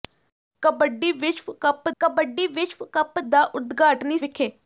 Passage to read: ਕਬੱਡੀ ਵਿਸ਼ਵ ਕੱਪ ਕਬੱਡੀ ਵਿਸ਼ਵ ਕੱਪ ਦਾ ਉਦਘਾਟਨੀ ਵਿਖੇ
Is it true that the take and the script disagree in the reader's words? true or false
false